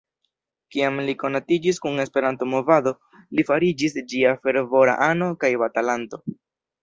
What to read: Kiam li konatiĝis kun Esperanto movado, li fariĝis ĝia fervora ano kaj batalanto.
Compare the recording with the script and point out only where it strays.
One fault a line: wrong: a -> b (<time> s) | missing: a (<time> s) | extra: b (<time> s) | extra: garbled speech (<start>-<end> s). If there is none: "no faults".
no faults